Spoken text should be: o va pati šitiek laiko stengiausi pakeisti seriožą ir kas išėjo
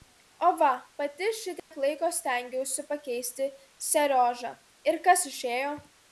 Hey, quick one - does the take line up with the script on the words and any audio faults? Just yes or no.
no